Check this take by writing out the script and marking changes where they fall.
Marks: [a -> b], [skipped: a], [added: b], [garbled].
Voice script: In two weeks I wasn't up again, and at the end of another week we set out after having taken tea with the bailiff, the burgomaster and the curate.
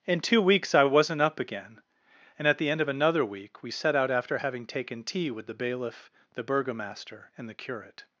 In two weeks I wasn't up again, and at the end of another week we set out after having taken tea with the bailiff, the burgomaster and the curate.